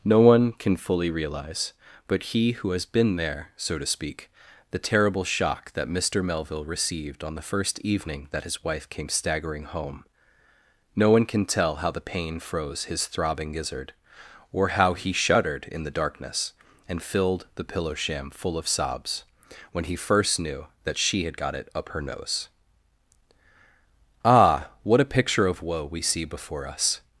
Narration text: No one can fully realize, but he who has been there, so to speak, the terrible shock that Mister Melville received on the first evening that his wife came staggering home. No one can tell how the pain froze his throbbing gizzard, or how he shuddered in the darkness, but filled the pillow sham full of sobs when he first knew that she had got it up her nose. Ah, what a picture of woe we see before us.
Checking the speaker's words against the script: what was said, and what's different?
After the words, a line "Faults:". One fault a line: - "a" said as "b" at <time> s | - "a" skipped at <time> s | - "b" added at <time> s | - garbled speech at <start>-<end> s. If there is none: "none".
No one can fully realize, but he who has been there, so to speak, the terrible shock that Mister Melville received on the first evening that his wife came staggering home. No one can tell how the pain froze his throbbing gizzard, or how he shuddered in the darkness, and filled the pillow sham full of sobs when he first knew that she had got it up her nose. Ah, what a picture of woe we see before us.
Faults:
- "but" said as "and" at 16.9 s